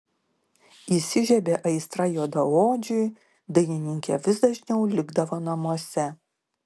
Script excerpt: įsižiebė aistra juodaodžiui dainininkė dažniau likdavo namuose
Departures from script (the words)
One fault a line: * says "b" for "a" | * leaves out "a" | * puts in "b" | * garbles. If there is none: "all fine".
* puts in "vis"